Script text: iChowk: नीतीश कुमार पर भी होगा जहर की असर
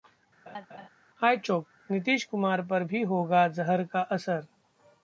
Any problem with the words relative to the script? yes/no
yes